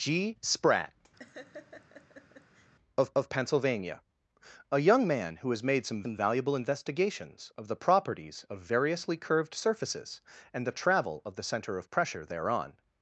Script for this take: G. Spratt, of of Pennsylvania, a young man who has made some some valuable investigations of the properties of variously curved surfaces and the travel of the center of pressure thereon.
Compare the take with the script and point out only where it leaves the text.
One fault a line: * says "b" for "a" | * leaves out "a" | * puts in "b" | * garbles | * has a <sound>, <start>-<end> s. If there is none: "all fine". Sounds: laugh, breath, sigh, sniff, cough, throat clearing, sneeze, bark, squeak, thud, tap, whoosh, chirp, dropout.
* has a laugh, 1.2-2.7 s